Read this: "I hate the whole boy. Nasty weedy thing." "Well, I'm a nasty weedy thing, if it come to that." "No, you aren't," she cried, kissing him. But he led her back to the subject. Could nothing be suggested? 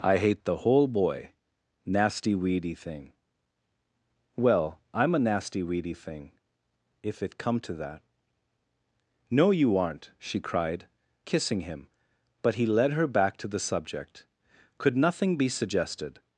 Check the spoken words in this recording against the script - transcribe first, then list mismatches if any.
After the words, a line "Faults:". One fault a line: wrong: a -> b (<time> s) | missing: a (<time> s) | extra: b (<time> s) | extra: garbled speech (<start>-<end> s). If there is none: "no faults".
"I hate the whole boy. Nasty weedy thing." "Well, I'm a nasty weedy thing, if it come to that." "No, you aren't," she cried, kissing him. But he led her back to the subject. Could nothing be suggested?
Faults:
no faults